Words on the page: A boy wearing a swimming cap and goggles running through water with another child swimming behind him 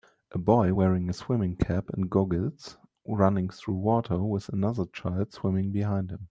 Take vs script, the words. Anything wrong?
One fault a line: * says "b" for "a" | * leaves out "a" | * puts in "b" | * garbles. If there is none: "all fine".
all fine